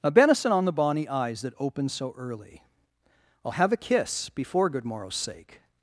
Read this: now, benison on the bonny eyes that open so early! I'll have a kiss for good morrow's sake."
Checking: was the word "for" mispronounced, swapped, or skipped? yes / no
yes